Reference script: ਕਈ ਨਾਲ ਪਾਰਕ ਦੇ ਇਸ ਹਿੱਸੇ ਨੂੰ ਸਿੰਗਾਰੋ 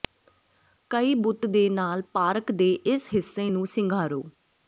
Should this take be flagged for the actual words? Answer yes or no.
yes